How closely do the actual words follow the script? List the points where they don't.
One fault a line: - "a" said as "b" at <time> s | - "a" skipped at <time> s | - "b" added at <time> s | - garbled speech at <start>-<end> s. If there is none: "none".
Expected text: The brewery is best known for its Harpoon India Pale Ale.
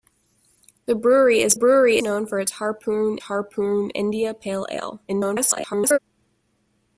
- "best" said as "brewery" at 1.5 s
- "Harpoon" added at 3.2 s
- garbled speech at 5.1-6.0 s